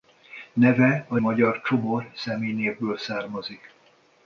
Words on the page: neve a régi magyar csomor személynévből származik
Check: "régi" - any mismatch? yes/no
yes